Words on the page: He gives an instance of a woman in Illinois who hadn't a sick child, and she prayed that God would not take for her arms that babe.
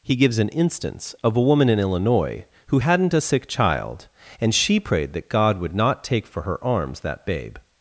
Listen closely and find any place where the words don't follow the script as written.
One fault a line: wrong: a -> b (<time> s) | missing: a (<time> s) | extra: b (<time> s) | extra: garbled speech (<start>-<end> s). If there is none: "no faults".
no faults